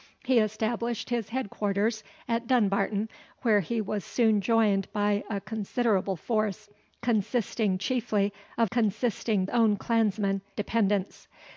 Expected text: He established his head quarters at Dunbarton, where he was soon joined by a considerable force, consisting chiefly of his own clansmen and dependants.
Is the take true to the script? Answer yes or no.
no